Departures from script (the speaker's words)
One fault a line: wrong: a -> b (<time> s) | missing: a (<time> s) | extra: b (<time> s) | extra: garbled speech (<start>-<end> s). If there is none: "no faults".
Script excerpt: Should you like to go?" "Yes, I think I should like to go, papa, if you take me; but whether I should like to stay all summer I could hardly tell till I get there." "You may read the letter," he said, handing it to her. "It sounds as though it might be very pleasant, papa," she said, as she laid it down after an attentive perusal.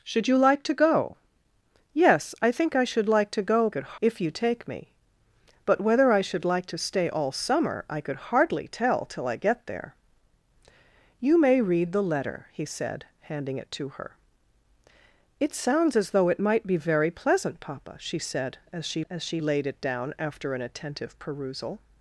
wrong: papa -> could (3.7 s)
extra: as she (19.1 s)